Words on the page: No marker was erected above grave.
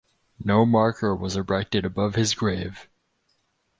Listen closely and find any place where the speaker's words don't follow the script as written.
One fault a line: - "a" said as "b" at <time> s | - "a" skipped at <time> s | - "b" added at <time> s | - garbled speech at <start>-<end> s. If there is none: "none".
- "his" added at 2.1 s